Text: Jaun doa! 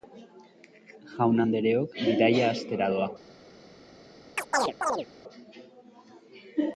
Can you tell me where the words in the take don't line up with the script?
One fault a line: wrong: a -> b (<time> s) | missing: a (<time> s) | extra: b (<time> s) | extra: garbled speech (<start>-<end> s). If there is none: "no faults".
extra: andereok bidaia hastera (1.4 s)